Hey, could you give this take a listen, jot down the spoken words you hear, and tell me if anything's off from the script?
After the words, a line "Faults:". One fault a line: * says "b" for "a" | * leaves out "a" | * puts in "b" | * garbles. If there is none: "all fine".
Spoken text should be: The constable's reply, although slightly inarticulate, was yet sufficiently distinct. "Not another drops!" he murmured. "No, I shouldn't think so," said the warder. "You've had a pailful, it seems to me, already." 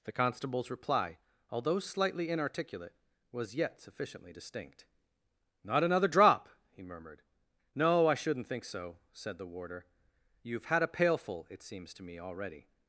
The constable's reply, although slightly inarticulate, was yet sufficiently distinct. "Not another drop!" he murmured. "No, I shouldn't think so," said the warder. "You've had a pailful, it seems to me, already."
Faults:
* says "drop" for "drops"